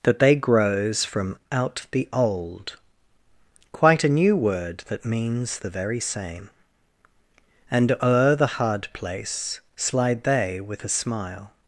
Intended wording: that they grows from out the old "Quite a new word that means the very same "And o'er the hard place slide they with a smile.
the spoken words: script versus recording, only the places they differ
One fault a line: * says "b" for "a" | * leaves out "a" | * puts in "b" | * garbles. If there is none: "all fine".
all fine